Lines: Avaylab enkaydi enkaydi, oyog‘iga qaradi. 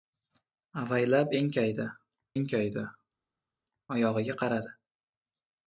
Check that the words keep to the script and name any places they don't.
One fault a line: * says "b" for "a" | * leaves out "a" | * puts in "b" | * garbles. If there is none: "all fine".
all fine